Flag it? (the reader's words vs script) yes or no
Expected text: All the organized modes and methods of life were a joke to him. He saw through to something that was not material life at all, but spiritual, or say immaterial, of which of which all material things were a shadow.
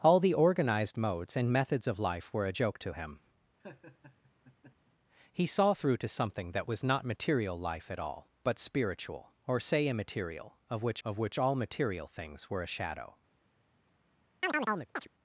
no